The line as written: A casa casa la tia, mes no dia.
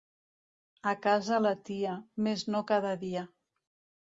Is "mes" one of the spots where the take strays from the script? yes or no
no